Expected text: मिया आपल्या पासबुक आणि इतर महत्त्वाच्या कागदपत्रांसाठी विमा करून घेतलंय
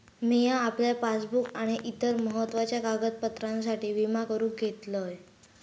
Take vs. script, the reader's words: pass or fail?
pass